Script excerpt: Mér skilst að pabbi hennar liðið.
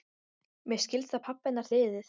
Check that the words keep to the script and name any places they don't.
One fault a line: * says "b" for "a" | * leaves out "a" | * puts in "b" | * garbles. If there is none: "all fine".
all fine